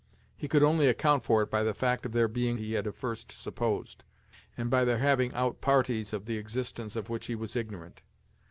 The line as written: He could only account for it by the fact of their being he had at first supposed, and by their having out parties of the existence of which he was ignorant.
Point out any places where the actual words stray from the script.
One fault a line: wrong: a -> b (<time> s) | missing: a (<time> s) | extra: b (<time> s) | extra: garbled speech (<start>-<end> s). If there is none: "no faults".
no faults